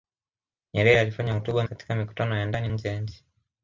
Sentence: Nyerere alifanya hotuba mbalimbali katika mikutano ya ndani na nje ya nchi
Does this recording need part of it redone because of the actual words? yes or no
yes